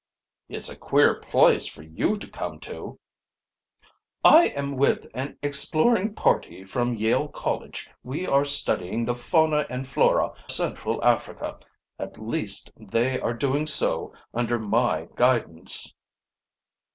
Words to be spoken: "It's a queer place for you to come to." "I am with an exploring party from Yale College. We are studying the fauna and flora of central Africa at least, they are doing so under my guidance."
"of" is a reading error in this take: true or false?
true